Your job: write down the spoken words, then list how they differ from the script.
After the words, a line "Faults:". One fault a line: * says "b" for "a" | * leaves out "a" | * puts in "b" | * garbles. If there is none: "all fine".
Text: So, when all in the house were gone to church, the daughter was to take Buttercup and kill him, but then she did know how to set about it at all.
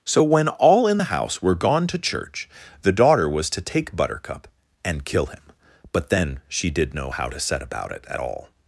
So, when all in the house were gone to church, the daughter was to take Buttercup and kill him, but then she did know how to set about it at all.
Faults:
all fine